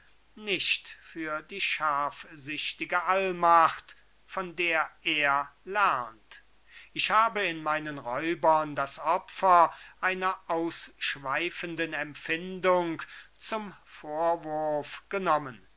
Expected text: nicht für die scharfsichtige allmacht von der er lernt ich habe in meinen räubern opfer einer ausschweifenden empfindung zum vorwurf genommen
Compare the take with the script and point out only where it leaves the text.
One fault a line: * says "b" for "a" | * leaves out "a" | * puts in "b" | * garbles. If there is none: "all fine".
* puts in "das"